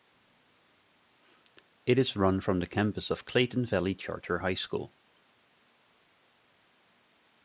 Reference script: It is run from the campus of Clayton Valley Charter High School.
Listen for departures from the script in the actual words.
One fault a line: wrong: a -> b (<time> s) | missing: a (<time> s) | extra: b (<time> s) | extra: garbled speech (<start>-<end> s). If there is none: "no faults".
no faults